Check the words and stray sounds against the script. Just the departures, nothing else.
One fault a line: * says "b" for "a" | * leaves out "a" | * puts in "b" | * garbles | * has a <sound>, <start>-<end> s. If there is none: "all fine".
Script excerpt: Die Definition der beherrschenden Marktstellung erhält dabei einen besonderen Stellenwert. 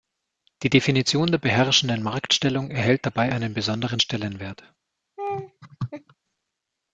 * has a laugh, 5.2-6.1 s